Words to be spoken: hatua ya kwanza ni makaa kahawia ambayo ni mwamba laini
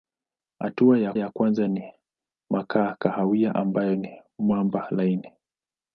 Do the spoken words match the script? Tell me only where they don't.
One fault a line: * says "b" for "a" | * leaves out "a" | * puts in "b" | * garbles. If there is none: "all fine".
* puts in "ya"